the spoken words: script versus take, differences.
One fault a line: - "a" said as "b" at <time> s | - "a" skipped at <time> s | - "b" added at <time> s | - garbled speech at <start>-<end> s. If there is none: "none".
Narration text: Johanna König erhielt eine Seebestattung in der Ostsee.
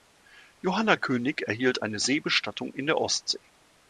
none